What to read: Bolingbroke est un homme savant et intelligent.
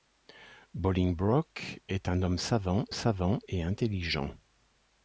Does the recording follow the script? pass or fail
fail